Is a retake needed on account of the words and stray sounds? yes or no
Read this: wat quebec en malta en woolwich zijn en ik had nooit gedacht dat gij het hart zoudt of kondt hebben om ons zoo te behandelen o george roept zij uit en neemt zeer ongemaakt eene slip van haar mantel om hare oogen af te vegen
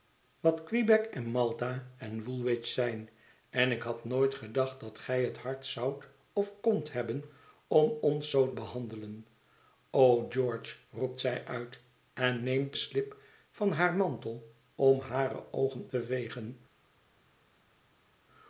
yes